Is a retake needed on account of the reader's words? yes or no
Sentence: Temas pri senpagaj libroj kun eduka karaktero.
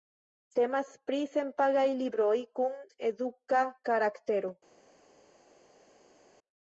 no